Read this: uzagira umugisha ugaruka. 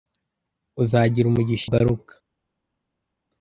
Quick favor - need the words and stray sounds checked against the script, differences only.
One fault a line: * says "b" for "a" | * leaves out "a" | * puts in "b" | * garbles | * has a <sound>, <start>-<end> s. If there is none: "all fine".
all fine